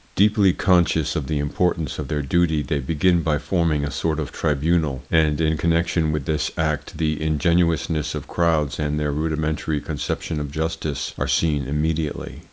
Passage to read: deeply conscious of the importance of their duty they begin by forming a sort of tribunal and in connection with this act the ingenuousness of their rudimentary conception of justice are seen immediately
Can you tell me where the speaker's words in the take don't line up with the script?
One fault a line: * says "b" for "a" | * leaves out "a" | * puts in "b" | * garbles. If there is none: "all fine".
* puts in "crowds and"